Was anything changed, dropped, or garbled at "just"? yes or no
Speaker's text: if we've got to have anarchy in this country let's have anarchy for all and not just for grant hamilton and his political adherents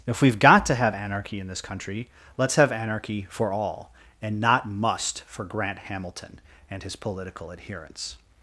yes